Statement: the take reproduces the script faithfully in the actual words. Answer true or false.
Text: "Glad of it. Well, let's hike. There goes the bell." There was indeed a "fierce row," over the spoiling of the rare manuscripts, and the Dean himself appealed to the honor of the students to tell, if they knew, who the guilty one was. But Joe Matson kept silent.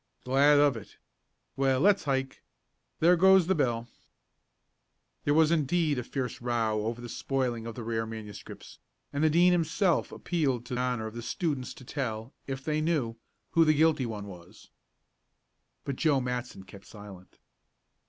false